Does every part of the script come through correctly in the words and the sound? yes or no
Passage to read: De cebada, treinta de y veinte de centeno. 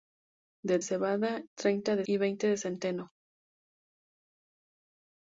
yes